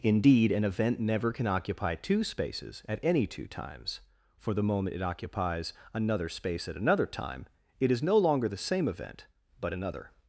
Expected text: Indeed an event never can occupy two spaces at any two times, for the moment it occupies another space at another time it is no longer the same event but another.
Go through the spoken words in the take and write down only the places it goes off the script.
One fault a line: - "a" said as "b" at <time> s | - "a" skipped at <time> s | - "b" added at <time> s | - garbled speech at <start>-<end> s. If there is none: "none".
none